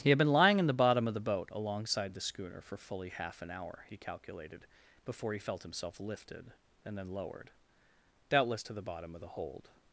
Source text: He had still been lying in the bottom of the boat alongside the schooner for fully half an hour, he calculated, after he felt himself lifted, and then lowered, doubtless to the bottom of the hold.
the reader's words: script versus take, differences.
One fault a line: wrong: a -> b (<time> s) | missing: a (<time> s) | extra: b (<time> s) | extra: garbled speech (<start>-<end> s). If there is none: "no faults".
missing: still (0.2 s)
wrong: after -> before (5.0 s)